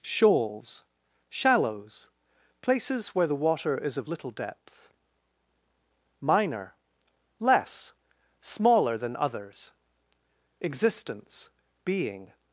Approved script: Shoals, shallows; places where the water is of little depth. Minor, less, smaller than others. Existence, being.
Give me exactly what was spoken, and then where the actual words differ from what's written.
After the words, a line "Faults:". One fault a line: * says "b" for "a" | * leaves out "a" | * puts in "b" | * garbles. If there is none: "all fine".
Shoals, shallows; places where the water is of little depth. Minor, less, smaller than others. Existence, being.
Faults:
all fine